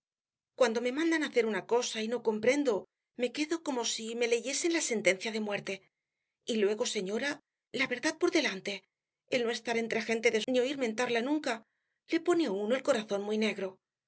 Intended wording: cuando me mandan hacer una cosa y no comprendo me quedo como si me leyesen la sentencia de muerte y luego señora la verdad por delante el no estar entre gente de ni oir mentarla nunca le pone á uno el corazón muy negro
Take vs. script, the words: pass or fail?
pass